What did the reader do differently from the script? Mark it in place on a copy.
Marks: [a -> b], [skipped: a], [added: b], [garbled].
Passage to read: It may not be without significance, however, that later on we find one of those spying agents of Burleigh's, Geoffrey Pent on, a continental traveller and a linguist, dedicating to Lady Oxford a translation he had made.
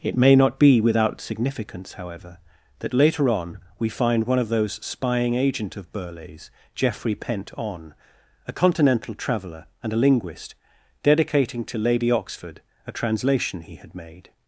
It may not be without significance, however, that later on we find one of those spying [agents -> agent] of Burleigh's, Geoffrey Pent on, a continental traveller and a linguist, dedicating to Lady Oxford a translation he had made.